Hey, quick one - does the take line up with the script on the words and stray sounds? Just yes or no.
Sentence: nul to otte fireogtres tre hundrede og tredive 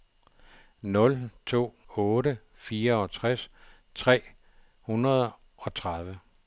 yes